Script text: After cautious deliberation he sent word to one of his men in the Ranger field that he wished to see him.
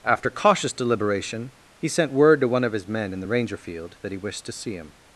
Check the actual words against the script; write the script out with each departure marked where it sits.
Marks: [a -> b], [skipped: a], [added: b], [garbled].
After cautious deliberation he sent word to one of his men in the Ranger field that he wished to see him.